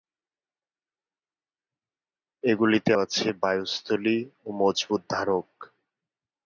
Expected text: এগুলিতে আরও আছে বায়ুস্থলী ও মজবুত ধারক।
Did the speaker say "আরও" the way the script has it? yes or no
no